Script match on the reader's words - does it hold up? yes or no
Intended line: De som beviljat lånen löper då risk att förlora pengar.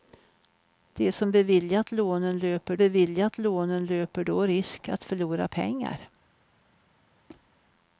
no